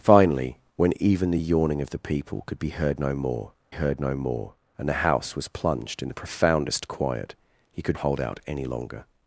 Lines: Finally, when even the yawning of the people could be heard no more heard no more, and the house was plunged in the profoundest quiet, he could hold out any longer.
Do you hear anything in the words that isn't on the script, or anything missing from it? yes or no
no